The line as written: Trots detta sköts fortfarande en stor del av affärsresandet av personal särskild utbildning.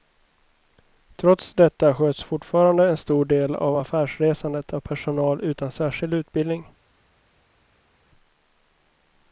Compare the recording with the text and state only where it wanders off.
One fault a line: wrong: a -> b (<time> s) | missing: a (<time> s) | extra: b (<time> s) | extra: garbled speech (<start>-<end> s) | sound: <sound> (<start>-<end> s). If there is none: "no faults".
extra: utan (5.4 s)